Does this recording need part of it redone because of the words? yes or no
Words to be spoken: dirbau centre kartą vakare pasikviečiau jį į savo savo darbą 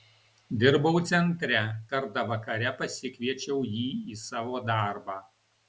yes